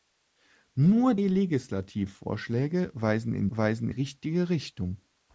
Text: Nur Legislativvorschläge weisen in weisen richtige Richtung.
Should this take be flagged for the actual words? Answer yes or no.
no